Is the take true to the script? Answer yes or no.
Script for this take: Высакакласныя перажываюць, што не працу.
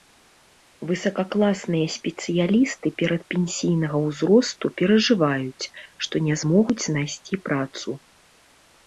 no